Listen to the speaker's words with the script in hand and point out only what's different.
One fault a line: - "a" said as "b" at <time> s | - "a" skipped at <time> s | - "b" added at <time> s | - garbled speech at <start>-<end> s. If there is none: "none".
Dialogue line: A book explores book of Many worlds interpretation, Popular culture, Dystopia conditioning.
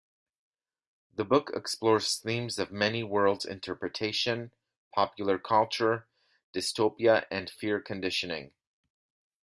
- "A" said as "The" at 1.1 s
- "book" said as "themes" at 2.2 s
- "and Fear" added at 7.3 s